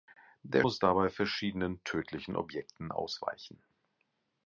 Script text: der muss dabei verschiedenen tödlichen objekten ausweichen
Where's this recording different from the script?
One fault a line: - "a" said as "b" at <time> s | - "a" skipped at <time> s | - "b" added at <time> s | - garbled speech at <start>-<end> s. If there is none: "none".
none